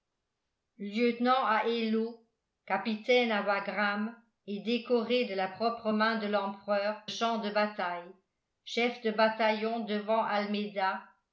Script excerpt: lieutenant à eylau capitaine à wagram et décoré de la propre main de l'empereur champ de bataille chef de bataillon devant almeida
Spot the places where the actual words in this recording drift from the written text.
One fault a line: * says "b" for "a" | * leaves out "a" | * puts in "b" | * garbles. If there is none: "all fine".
all fine